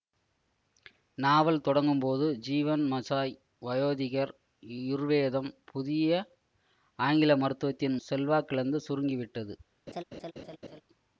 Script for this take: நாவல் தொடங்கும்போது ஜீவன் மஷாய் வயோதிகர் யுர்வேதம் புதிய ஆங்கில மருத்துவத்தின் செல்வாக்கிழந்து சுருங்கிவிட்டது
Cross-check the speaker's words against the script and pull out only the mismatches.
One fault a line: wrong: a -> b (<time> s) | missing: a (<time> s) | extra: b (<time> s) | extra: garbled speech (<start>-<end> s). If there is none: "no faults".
no faults